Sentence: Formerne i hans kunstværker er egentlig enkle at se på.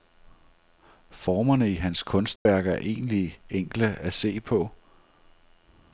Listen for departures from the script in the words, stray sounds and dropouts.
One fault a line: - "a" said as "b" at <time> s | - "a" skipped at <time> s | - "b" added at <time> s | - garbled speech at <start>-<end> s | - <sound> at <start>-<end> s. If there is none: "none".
- dropout at 2.4-2.5 s